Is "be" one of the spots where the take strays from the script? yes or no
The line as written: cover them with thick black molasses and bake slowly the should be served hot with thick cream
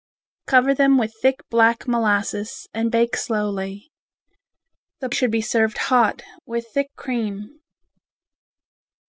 no